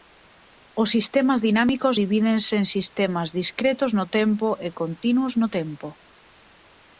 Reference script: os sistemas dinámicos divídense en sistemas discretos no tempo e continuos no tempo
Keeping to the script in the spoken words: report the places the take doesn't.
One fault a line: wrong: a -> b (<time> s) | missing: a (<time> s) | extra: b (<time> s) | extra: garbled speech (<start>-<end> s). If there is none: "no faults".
no faults